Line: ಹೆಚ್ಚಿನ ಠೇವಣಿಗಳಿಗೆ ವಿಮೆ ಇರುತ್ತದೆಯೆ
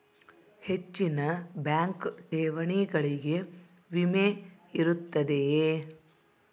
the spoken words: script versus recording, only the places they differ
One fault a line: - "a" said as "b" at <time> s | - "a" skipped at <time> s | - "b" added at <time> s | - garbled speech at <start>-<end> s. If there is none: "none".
- "ಬ್ಯಾಂಕ್" added at 1.6 s